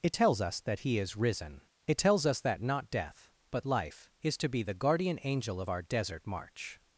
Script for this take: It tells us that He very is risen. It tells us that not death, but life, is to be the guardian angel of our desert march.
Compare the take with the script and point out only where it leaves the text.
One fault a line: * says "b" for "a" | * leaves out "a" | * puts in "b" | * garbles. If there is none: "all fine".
* leaves out "very"